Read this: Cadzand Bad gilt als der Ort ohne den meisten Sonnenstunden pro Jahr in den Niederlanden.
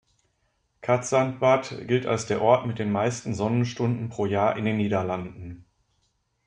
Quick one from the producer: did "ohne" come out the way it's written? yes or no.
no